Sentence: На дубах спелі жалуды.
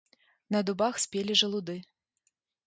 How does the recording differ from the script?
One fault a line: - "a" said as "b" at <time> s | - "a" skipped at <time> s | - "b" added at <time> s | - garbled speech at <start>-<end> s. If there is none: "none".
none